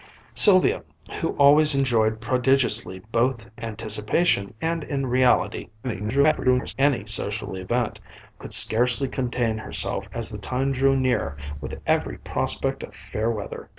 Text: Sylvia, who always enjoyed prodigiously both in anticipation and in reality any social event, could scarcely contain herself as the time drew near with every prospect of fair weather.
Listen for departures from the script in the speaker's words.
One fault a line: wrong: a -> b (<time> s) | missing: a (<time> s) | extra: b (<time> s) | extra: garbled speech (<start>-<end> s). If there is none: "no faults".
missing: in (3.5 s)
extra: garbled speech (5.8-6.7 s)